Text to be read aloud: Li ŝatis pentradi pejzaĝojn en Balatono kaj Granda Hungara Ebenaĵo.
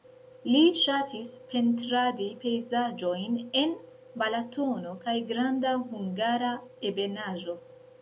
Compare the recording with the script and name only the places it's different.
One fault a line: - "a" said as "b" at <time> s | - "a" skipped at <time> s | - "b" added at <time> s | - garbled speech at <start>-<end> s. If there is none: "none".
none